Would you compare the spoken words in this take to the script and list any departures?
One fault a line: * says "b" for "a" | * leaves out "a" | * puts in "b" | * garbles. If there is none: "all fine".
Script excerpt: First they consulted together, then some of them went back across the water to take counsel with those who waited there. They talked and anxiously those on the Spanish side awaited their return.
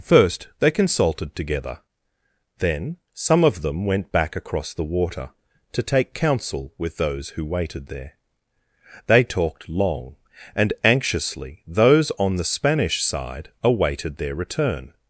* puts in "long"